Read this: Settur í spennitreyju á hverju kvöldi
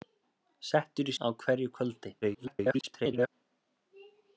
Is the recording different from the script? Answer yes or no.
yes